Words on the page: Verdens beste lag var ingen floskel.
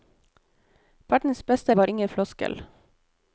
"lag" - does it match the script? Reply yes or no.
no